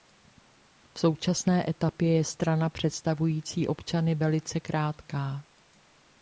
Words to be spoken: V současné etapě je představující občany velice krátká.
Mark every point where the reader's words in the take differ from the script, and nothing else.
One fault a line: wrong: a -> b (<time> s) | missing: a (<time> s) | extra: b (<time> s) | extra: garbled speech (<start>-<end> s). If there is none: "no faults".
extra: strana (2.2 s)